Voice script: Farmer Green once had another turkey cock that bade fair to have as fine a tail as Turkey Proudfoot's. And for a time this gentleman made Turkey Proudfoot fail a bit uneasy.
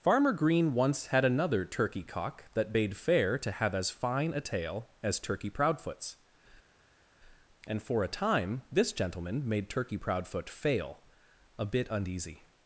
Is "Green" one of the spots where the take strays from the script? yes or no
no